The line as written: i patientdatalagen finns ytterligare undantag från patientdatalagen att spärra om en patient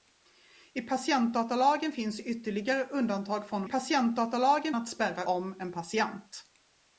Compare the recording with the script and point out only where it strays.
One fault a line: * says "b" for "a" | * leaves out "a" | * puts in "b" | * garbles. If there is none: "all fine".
all fine